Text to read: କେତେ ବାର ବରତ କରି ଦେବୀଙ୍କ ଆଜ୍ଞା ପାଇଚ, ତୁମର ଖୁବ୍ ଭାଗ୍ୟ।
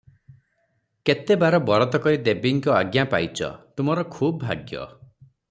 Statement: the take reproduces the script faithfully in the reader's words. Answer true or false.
true